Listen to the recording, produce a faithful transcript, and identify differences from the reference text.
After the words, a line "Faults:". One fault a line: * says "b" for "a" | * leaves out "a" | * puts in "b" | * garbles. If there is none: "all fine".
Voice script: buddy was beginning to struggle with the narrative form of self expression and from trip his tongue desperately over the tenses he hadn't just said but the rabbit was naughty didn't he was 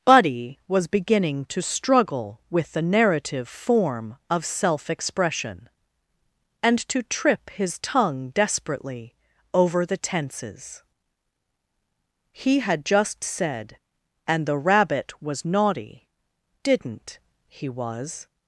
buddy was beginning to struggle with the narrative form of self expression and to trip his tongue desperately over the tenses he had just said and the rabbit was naughty didn't he was
Faults:
* says "to" for "from"
* says "had" for "hadn't"
* says "and" for "but"